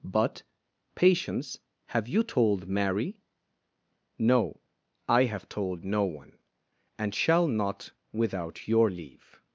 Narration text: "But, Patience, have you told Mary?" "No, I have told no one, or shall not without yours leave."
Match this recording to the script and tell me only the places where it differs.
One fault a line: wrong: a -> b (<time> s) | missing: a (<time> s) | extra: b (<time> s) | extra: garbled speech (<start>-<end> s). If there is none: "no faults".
wrong: or -> and (7.0 s)
wrong: yours -> your (8.7 s)